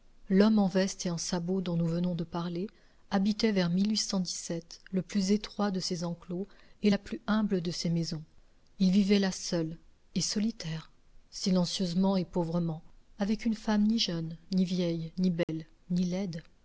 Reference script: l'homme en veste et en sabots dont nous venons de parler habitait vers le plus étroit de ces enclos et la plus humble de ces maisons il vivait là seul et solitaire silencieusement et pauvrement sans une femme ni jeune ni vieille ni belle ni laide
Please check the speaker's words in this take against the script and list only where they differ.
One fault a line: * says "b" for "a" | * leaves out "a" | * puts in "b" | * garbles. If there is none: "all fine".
* says "avec" for "sans"